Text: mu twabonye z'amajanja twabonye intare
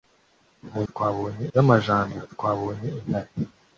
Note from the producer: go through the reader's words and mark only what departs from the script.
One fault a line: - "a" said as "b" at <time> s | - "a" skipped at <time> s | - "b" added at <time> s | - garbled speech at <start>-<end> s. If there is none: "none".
none